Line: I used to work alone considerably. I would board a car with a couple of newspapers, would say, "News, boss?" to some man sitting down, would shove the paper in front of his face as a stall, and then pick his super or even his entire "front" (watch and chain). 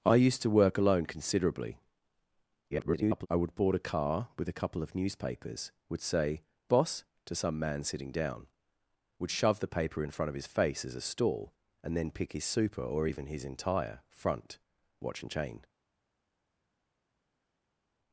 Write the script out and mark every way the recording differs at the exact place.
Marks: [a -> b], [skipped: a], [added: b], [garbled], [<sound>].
I used to work alone considerably. [garbled] I would board a car with a couple of newspapers, would say, [skipped: "News,] boss?" to some man sitting down, would shove the paper in front of his face as a stall, and then pick his super or even his entire "front" (watch and chain).